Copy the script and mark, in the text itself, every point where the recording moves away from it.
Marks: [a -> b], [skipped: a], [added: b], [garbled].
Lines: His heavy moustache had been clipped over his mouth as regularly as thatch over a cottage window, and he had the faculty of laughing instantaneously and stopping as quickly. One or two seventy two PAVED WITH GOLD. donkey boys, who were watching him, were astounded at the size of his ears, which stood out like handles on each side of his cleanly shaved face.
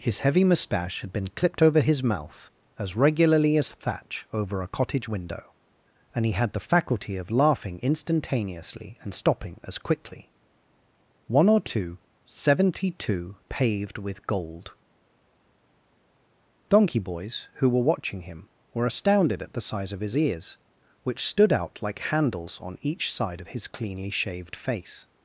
His heavy moustache had been clipped over his mouth as regularly as thatch over a cottage window, and he had the faculty of laughing instantaneously and stopping as quickly. One or two seventy two PAVED WITH GOLD. donkey boys, who were watching him, were astounded at the size of his ears, which stood out like handles on each side of his cleanly shaved face.